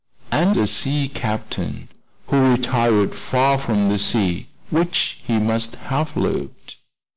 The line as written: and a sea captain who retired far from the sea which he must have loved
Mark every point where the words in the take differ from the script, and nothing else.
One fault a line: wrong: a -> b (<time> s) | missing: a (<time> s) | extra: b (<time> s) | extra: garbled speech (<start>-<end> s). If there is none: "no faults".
no faults